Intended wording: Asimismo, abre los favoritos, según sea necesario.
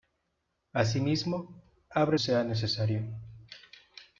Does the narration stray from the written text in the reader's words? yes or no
yes